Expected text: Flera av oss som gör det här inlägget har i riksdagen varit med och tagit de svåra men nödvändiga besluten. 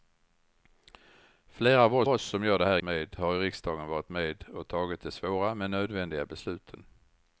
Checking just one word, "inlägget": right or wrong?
wrong